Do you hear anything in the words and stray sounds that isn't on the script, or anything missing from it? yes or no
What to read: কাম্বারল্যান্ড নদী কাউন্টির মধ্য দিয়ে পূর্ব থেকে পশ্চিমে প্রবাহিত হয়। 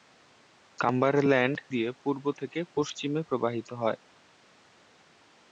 yes